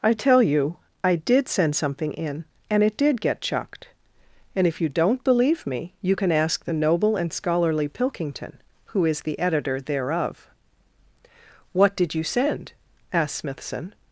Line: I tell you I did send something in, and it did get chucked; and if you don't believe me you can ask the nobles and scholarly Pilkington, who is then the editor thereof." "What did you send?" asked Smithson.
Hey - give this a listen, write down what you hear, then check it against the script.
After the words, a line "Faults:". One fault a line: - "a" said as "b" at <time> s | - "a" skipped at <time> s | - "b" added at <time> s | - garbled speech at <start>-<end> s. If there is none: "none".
I tell you I did send something in, and it did get chucked; and if you don't believe me you can ask the noble and scholarly Pilkington, who is the editor thereof." "What did you send?" asked Smithson.
Faults:
- "nobles" said as "noble" at 6.7 s
- "then" skipped at 9.2 s